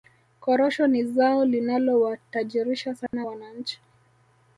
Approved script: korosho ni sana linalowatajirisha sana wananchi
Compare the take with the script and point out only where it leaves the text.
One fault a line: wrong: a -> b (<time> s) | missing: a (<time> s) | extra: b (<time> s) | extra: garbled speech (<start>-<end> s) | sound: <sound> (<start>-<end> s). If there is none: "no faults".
wrong: sana -> zao (1.0 s)
sound: dropout (3.1-3.1 s)